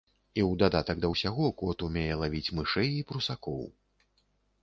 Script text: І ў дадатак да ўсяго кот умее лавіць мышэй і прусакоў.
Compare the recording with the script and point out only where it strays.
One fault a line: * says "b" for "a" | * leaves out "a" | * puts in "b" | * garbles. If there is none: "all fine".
all fine